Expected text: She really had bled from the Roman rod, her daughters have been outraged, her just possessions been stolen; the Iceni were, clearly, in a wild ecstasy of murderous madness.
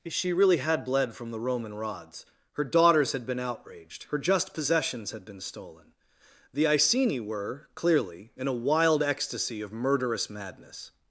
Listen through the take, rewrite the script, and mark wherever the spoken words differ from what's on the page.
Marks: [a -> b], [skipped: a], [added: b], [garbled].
She really had bled from the Roman [rod, -> rods] her daughters [have -> had] been outraged, her just possessions [added: had] been stolen; the Iceni were, clearly, in a wild ecstasy of murderous madness.